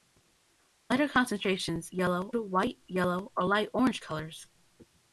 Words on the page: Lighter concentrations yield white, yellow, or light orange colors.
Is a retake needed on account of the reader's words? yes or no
yes